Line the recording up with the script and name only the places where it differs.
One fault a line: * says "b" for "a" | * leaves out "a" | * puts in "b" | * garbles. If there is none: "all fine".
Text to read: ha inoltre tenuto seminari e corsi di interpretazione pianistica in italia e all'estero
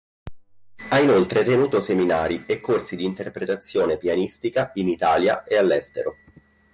all fine